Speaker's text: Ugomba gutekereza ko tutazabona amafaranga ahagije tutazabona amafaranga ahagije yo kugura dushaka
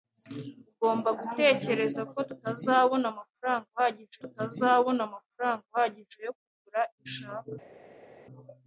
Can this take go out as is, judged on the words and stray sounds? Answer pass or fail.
pass